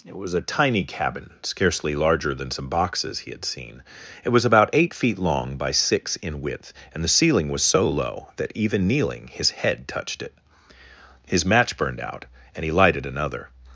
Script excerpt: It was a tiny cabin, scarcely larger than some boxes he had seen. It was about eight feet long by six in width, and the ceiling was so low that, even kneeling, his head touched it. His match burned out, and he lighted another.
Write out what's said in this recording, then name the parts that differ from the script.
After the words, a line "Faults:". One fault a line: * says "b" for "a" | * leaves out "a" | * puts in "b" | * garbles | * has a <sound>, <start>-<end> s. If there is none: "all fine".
It was a tiny cabin, scarcely larger than some boxes he had seen. It was about eight feet long by six in width, and the ceiling was so low that, even kneeling, his head touched it. His match burned out, and he lighted another.
Faults:
all fine